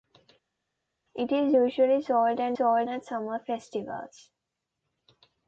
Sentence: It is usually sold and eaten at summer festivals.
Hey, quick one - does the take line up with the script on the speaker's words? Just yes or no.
no